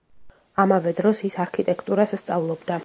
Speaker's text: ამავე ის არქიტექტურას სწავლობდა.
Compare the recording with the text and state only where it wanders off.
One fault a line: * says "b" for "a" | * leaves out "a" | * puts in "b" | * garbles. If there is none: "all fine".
* puts in "დროს"